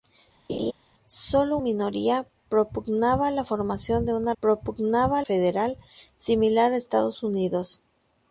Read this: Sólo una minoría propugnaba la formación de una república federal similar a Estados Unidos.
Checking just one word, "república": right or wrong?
wrong